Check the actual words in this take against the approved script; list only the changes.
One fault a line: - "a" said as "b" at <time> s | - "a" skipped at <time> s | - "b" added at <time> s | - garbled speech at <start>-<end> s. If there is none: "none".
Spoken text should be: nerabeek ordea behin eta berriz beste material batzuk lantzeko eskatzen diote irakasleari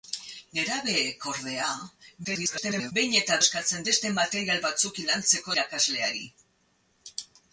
- garbled speech at 2.2-2.9 s
- "berriz" said as "eskatzen" at 3.4 s
- "eskatzen diote" skipped at 5.6 s